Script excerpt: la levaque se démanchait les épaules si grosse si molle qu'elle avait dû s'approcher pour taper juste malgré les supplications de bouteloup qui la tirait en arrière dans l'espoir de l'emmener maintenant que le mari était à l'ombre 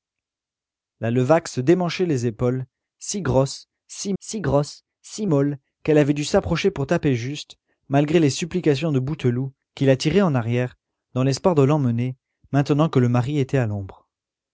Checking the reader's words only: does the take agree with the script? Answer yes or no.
no